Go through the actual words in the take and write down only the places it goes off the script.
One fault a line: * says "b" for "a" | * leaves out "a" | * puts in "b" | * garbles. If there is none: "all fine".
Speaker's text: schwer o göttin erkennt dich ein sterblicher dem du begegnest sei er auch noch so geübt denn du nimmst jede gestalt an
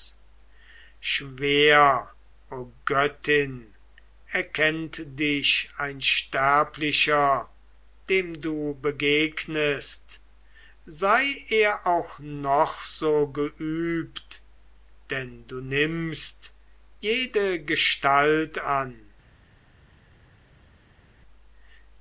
all fine